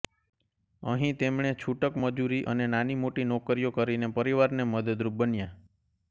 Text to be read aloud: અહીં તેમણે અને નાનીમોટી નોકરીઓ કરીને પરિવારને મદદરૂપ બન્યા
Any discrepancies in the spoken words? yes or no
yes